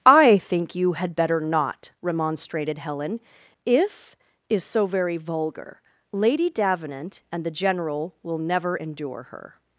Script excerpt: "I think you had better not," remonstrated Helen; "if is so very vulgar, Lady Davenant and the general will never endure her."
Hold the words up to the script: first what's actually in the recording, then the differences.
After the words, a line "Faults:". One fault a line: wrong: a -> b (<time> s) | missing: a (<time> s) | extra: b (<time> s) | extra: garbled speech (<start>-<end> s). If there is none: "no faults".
"I think you had better not," remonstrated Helen; "if is so very vulgar, Lady Davenant and the general will never endure her."
Faults:
no faults